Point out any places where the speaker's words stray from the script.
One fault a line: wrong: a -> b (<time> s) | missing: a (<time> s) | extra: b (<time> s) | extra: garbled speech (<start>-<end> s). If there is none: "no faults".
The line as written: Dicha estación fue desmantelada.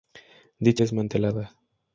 missing: estación fue (0.8 s)